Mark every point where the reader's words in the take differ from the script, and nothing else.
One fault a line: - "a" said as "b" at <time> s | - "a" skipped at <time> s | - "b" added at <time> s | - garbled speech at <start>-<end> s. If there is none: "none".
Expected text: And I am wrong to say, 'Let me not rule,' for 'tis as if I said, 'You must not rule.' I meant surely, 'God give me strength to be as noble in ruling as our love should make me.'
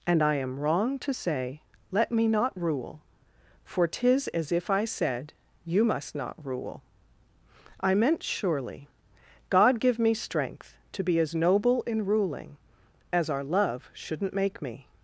- "should" said as "shouldn't" at 13.9 s